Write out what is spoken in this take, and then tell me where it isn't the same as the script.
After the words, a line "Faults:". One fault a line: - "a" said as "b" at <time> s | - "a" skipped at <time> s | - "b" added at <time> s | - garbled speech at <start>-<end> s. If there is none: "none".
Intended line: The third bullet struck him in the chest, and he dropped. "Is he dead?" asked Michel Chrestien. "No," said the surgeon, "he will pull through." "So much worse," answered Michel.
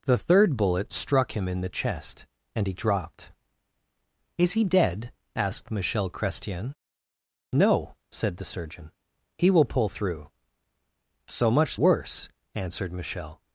The third bullet struck him in the chest, and he dropped. "Is he dead?" asked Michel Chrestien. "No," said the surgeon, "he will pull through." "So much worse," answered Michel.
Faults:
none